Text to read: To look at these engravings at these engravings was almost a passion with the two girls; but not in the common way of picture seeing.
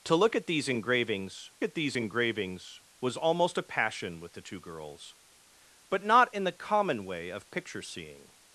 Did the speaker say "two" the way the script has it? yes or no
yes